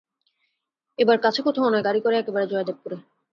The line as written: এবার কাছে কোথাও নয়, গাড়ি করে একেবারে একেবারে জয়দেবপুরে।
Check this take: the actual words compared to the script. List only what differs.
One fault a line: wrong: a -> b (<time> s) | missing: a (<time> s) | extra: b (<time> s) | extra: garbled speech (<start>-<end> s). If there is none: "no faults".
missing: একেবারে (2.5 s)